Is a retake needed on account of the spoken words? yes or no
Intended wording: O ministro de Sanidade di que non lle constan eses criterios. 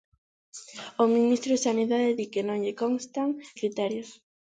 yes